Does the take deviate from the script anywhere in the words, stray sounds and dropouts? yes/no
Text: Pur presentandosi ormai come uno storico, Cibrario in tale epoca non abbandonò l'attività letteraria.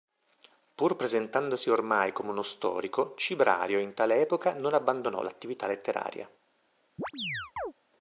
yes